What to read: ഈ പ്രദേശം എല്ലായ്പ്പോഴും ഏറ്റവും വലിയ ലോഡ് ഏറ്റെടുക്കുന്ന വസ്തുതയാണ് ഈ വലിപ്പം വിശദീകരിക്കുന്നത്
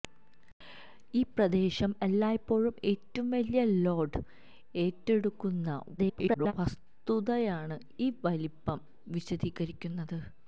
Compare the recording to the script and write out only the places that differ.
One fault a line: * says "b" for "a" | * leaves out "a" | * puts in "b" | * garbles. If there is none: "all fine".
* garbles